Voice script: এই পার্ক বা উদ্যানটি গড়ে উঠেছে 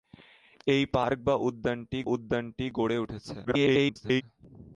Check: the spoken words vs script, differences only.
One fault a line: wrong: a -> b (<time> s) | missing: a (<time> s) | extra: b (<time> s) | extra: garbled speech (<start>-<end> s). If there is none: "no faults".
extra: উদ্যানটি (2.1 s)
extra: garbled speech (3.4-4.2 s)